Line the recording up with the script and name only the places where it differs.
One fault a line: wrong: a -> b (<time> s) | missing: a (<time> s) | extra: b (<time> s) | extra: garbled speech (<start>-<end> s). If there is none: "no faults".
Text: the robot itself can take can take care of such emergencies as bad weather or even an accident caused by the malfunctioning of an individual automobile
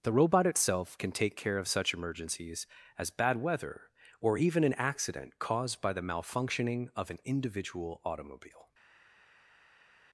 missing: can take (1.4 s)